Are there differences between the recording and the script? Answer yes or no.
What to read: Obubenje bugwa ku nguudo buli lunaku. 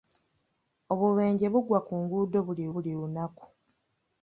yes